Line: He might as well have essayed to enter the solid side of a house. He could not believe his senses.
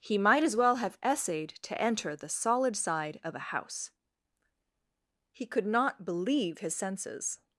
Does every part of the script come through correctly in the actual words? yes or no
yes